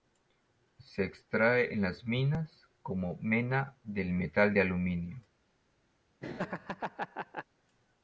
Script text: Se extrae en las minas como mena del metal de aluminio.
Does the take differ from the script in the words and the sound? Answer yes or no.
yes